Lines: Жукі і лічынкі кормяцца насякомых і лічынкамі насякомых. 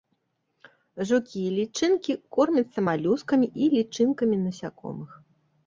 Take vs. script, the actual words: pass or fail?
fail